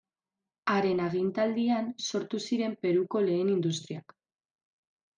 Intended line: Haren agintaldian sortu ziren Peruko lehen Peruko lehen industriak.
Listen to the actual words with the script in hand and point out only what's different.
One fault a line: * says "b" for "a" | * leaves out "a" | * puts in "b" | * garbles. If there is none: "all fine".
* leaves out "Peruko lehen"